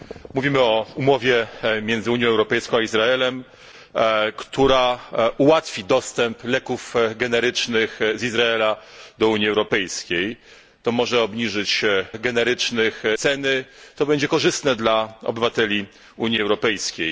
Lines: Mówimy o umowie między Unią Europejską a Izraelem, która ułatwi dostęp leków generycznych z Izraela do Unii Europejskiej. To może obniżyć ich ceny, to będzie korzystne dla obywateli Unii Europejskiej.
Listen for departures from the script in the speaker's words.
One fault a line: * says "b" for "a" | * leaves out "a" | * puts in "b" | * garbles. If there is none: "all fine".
* says "generycznych" for "ich"